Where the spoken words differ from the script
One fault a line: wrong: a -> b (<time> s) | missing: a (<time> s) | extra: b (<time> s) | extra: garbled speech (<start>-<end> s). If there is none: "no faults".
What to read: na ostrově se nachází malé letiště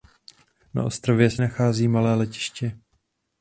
no faults